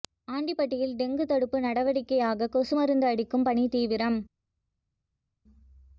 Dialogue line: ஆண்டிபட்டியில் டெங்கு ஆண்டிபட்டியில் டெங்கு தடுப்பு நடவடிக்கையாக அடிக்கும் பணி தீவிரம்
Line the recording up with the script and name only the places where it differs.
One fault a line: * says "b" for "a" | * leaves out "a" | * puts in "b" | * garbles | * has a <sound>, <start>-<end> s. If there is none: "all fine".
* says "தடுப்பு நடவடிக்கையாக கொசு மருந்து" for "ஆண்டிபட்டியில் டெங்கு தடுப்பு நடவடிக்கையாக"